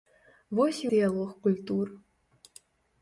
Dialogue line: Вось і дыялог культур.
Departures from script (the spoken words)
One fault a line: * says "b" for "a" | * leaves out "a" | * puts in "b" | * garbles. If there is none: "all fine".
all fine